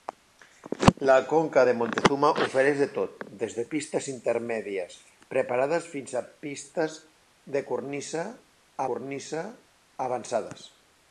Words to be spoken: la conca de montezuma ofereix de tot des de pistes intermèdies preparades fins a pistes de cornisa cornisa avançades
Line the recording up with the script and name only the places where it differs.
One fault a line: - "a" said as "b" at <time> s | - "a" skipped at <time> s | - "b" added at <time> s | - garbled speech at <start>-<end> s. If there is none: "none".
none